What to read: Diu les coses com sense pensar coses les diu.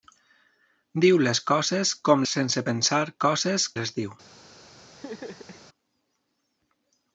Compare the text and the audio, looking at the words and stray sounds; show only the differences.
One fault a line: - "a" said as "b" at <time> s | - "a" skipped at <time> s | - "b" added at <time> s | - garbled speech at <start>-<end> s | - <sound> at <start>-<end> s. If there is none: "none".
- laugh at 5.0-5.7 s